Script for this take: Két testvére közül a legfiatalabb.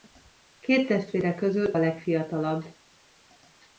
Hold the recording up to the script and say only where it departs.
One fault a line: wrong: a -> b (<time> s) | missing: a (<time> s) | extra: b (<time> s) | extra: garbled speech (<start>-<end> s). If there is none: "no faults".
no faults